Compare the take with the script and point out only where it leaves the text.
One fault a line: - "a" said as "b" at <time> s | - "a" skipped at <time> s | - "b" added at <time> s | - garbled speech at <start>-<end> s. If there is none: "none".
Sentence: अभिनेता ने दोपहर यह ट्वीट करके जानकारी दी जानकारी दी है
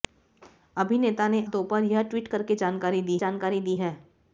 none